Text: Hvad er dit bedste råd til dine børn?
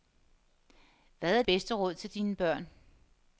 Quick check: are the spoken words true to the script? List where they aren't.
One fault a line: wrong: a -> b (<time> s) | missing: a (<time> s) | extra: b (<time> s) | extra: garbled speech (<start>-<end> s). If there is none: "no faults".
missing: dit (1.4 s)